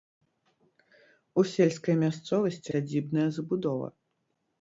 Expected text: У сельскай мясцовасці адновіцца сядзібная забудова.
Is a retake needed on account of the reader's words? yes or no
yes